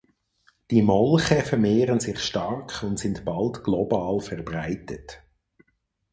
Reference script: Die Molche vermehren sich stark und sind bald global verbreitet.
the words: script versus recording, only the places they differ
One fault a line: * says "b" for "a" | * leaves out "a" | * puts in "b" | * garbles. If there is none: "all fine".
all fine